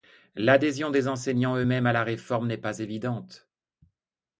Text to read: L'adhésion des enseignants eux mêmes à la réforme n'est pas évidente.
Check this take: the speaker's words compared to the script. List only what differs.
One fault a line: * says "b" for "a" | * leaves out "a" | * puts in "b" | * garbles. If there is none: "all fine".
all fine